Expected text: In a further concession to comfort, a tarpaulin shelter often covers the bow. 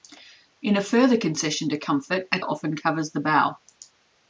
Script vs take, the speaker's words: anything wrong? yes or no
yes